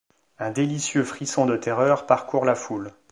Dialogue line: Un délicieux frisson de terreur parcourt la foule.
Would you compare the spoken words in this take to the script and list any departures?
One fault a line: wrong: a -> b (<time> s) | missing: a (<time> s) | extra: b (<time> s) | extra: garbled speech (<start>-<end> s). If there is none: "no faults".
no faults